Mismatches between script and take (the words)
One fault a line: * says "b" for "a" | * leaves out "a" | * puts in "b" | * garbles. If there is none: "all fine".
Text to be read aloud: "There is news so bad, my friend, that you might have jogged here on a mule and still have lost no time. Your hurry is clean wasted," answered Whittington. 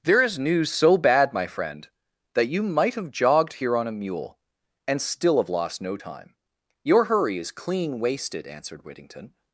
all fine